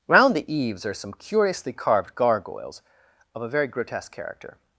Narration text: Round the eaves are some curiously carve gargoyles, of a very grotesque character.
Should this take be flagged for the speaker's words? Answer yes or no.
yes